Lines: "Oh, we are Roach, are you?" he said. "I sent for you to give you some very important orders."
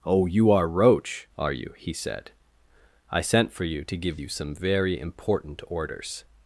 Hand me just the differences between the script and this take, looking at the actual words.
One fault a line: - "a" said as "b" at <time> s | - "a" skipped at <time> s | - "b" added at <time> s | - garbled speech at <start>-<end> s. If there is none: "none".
- "we" said as "you" at 0.2 s